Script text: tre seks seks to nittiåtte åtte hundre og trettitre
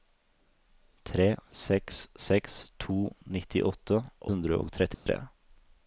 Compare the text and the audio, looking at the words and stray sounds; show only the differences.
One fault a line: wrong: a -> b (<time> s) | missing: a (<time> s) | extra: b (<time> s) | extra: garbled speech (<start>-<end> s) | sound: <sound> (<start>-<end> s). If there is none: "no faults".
missing: åtte (4.0 s)
sound: dropout (4.9-5.1 s)